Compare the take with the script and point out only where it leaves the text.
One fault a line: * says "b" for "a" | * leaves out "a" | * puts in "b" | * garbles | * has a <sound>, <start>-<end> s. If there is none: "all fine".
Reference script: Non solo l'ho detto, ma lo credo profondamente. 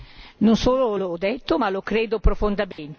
* has a dropout, 2.7-2.8 s